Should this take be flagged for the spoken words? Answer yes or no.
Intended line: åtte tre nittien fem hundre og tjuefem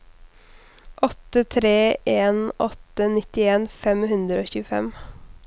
yes